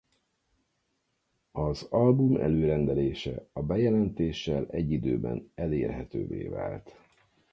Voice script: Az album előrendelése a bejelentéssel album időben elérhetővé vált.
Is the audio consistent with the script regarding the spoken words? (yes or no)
no